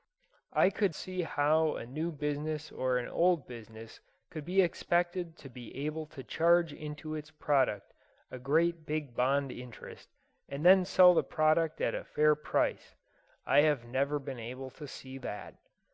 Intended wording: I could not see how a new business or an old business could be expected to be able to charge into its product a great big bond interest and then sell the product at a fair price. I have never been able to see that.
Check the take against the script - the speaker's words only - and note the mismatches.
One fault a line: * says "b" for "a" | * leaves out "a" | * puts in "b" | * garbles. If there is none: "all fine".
* leaves out "not"